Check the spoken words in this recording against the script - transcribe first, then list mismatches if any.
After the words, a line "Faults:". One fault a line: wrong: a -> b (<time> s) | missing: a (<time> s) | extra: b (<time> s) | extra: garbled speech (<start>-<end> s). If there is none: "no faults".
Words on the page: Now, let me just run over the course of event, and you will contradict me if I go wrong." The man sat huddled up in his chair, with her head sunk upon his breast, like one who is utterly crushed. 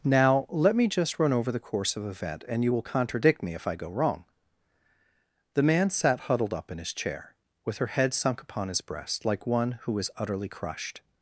Now, let me just run over the course of event, and you will contradict me if I go wrong." The man sat huddled up in his chair, with her head sunk upon his breast, like one who is utterly crushed.
Faults:
no faults